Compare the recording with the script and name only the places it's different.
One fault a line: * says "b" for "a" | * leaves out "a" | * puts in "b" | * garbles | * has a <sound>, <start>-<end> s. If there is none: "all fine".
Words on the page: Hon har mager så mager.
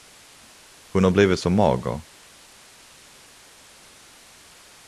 * says "blivit" for "mager"